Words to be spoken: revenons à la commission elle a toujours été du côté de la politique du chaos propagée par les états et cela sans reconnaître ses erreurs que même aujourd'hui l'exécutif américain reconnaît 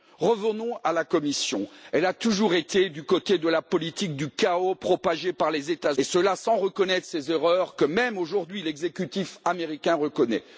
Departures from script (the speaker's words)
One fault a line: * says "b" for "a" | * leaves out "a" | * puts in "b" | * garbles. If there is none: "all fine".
all fine